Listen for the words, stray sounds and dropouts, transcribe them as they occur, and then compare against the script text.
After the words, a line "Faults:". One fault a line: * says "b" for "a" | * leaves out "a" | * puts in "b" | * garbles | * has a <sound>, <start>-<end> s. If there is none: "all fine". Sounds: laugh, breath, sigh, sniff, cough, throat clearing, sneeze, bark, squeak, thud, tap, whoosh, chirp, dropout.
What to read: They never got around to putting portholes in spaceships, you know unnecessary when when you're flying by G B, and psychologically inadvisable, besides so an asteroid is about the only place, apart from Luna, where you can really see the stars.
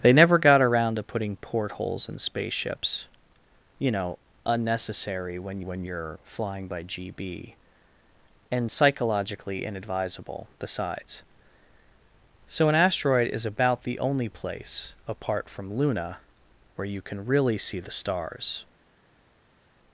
They never got around to putting portholes in spaceships, you know unnecessary when when you're flying by G B, and psychologically inadvisable, besides so an asteroid is about the only place, apart from Luna, where you can really see the stars.
Faults:
all fine